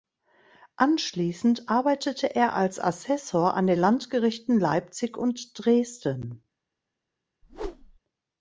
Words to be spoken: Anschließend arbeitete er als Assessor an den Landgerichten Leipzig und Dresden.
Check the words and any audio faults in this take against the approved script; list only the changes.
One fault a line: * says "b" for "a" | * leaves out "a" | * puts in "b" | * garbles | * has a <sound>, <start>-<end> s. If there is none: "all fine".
* has a whoosh, 7.4-8.0 s